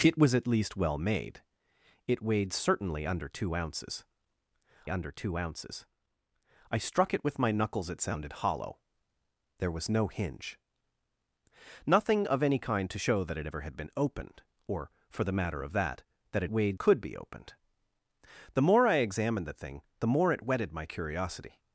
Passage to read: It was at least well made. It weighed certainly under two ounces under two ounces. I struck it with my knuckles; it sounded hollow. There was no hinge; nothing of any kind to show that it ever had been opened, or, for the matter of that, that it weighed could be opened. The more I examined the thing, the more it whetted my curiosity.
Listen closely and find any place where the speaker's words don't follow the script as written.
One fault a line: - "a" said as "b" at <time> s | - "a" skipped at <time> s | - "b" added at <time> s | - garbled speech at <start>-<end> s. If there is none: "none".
none